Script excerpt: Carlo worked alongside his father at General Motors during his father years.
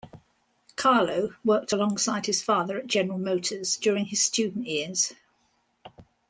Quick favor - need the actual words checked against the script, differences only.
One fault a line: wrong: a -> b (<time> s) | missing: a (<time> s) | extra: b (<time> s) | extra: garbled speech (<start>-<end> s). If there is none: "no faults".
wrong: father -> student (4.2 s)